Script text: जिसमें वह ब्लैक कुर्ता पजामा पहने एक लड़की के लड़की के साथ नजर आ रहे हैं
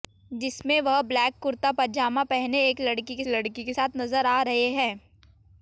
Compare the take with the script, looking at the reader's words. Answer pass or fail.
pass